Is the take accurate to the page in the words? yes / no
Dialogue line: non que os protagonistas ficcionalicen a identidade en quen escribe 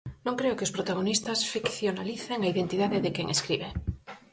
no